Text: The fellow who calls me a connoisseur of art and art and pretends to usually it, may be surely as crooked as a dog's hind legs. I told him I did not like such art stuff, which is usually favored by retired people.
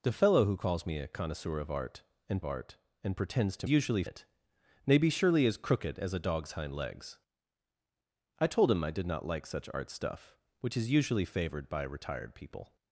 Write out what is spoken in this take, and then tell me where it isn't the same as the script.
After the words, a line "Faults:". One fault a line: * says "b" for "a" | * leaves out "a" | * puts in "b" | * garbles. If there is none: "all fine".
The fellow who calls me a connoisseur of art and art and pretends to usually it, may be surely as crooked as a dog's hind legs. I told him I did not like such art stuff, which is usually favored by retired people.
Faults:
all fine